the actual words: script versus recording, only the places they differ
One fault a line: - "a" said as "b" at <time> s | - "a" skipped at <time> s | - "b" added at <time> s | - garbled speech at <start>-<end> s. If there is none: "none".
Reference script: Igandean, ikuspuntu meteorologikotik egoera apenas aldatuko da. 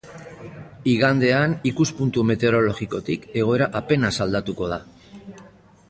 none